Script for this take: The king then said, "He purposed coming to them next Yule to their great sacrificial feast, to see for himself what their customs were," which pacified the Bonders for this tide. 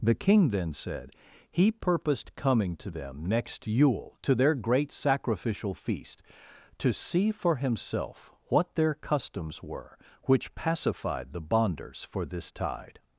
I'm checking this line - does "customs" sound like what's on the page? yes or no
yes